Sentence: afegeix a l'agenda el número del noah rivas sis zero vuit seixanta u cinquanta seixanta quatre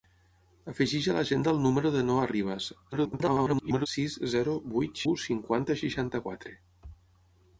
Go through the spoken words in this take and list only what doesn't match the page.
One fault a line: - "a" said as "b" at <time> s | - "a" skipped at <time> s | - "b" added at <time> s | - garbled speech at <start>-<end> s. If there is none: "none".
- garbled speech at 2.9-3.9 s
- "seixanta" skipped at 5.0 s